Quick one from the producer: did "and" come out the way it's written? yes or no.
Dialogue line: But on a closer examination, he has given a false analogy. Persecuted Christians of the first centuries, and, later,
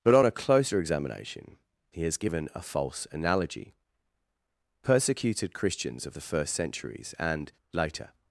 yes